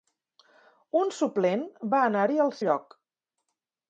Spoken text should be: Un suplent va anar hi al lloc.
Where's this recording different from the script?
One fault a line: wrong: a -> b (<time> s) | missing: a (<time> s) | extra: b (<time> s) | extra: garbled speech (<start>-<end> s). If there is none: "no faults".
no faults